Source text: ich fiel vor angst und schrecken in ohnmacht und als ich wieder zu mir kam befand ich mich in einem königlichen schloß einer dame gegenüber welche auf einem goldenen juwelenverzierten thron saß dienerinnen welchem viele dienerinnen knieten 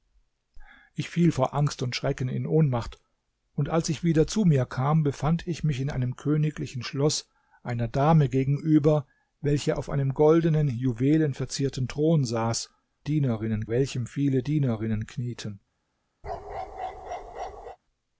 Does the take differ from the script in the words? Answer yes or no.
no